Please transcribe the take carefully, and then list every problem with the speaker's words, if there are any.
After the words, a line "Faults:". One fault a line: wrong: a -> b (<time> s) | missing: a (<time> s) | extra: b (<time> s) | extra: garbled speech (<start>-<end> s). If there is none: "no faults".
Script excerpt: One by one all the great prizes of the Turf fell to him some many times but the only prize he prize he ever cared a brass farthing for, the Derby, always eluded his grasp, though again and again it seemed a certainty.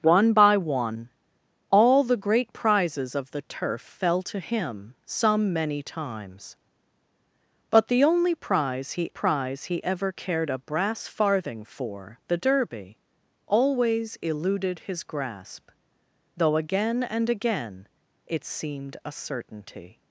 One by one all the great prizes of the Turf fell to him some many times but the only prize he prize he ever cared a brass farthing for, the Derby, always eluded his grasp, though again and again it seemed a certainty.
Faults:
no faults